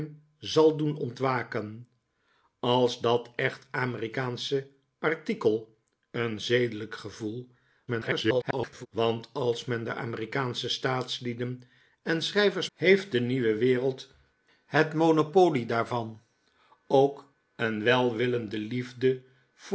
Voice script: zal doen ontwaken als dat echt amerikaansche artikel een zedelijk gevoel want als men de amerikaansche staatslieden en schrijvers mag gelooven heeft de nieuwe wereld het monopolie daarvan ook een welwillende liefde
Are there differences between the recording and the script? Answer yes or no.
yes